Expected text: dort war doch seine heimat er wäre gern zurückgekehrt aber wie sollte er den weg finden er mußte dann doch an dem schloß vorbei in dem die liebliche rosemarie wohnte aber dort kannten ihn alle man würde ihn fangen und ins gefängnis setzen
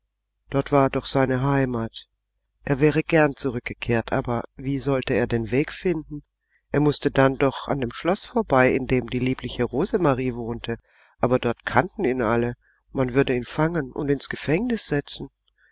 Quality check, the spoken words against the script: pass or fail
pass